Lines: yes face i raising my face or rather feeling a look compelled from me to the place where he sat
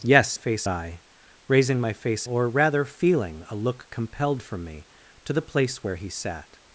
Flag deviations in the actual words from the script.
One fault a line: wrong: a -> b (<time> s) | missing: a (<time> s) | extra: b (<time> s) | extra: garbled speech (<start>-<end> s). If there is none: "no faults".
no faults